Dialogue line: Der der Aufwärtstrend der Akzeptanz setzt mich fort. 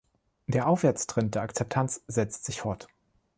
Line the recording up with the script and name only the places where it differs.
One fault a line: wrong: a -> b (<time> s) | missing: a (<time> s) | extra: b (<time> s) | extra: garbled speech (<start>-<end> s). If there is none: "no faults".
missing: der (0.7 s)
wrong: mich -> sich (2.5 s)